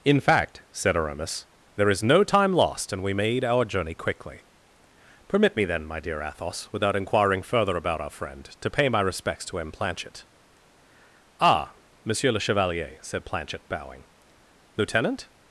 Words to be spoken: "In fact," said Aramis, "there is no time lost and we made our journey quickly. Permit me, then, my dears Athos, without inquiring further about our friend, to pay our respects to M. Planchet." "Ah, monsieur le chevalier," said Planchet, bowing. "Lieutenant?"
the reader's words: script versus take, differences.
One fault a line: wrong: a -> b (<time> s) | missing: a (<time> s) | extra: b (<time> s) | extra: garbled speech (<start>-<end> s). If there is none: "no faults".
wrong: dears -> dear (6.0 s)
wrong: our -> my (8.9 s)